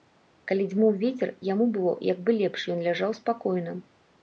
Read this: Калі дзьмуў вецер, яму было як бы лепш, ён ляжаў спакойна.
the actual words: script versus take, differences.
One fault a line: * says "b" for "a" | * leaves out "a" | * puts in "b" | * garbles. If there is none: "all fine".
all fine